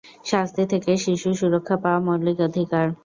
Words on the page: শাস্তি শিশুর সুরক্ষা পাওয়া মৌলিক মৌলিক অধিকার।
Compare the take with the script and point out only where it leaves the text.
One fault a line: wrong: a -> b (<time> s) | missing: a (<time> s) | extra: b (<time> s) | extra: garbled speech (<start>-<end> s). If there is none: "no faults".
extra: থেকে (0.7 s)
missing: মৌলিক (2.4 s)